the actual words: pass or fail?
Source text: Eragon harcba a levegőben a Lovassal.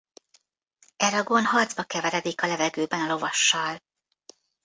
fail